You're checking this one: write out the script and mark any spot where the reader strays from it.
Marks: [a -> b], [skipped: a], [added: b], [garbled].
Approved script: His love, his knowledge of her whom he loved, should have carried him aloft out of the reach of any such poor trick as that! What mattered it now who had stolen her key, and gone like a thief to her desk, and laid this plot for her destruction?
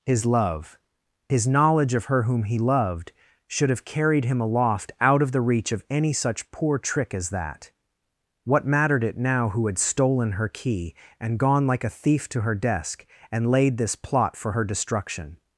His love, his knowledge of her whom he loved, should have carried him aloft out of the reach of any such poor trick as that! What mattered it now who had stolen her key, and gone like a thief to her desk, and laid this plot for her destruction?